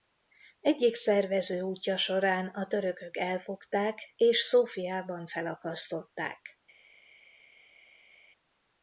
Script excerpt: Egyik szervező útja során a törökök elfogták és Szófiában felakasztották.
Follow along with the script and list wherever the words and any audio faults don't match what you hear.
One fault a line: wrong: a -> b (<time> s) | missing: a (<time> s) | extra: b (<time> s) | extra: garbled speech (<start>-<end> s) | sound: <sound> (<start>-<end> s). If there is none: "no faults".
no faults